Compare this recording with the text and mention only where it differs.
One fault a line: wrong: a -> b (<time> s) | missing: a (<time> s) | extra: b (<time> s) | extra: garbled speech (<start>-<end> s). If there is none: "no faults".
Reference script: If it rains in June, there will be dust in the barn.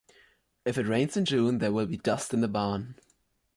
no faults